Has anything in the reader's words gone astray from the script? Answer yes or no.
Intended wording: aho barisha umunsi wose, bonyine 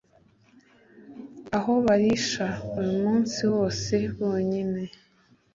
no